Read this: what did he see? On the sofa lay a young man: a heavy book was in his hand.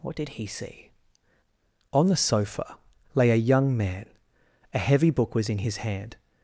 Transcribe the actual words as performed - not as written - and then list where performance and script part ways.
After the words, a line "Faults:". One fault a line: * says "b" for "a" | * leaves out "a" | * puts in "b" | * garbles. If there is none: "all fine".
what did he see? On the sofa lay a young man: a heavy book was in his hand.
Faults:
all fine